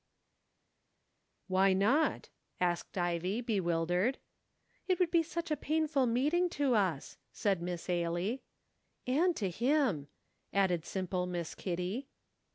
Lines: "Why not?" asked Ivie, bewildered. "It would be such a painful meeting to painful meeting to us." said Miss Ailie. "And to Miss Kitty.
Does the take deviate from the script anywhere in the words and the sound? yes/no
yes